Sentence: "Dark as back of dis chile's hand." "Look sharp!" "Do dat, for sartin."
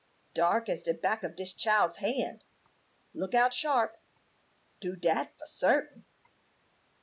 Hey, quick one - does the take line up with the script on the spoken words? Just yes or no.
no